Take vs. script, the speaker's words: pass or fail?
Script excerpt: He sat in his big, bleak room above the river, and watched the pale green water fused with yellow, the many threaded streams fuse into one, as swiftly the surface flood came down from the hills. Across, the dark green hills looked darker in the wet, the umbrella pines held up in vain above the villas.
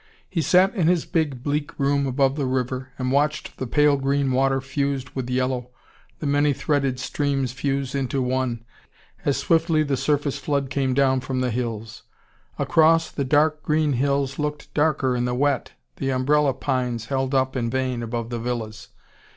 pass